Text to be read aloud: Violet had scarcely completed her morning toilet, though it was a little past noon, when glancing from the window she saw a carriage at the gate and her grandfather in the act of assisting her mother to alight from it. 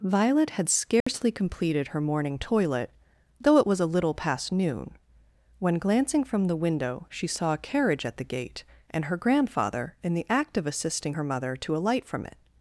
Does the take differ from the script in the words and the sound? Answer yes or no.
yes